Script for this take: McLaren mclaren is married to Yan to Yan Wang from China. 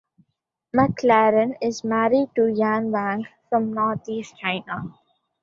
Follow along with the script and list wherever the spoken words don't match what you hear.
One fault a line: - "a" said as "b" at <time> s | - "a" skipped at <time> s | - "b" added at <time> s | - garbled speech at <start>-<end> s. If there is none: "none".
- "mclaren" skipped at 1.6 s
- "to Yan" skipped at 2.9 s
- "Northeast" added at 3.7 s